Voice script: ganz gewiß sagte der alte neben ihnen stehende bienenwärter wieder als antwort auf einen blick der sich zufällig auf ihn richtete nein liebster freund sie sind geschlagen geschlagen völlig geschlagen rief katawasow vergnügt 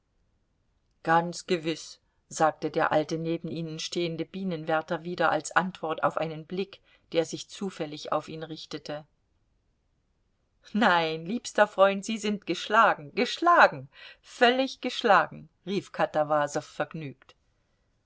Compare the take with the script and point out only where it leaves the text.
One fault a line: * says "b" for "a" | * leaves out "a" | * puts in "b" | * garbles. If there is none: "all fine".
all fine